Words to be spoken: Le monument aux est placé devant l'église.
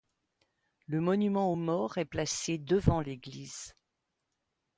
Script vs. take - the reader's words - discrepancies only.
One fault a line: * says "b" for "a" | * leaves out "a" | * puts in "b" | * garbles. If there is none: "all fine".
* puts in "morts"